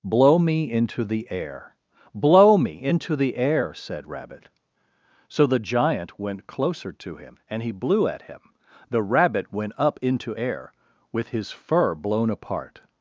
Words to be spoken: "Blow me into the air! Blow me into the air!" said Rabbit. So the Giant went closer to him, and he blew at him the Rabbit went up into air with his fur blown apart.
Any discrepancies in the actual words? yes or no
no